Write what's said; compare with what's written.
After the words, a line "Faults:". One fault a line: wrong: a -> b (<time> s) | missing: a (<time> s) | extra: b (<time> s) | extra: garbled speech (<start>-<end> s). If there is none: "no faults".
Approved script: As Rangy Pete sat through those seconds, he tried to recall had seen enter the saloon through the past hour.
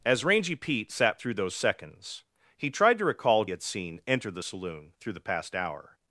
As Rangy Pete sat through those seconds, he tried to recall had seen enter the saloon through the past hour.
Faults:
no faults